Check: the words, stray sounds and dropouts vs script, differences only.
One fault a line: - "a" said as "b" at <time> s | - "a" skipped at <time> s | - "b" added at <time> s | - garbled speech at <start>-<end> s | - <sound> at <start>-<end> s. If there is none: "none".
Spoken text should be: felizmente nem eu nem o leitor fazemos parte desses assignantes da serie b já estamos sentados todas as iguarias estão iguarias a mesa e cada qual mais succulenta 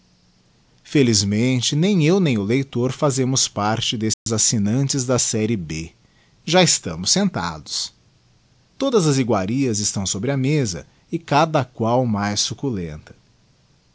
- dropout at 4.1-4.3 s
- "iguarias" said as "sobre" at 10.1 s